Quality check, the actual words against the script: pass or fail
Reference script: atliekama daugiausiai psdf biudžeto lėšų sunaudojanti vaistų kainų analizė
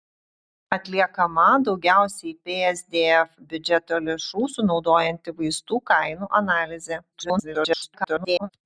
fail